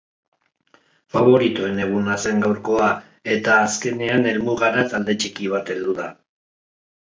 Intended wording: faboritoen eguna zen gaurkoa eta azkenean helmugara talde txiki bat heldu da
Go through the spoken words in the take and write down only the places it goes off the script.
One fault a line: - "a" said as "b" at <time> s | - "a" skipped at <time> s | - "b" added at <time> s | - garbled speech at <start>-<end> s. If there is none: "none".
none